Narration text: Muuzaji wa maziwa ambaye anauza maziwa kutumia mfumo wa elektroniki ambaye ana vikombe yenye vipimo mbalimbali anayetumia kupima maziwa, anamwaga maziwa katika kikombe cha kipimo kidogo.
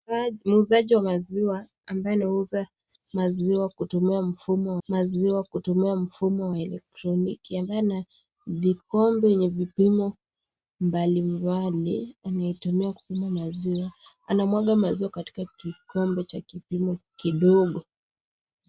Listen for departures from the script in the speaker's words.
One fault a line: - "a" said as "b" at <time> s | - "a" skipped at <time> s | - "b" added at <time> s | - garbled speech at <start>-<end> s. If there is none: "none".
- "maziwa kutumia mfumo" added at 4.9 s